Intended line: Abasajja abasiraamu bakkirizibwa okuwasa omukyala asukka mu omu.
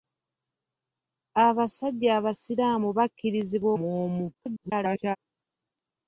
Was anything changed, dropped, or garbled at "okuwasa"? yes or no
yes